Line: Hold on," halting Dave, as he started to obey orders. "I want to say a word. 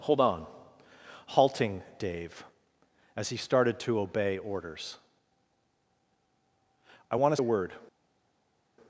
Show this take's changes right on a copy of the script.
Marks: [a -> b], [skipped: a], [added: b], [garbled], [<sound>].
Hold on," halting Dave, as he started to obey orders. "I want to [skipped: say] a word.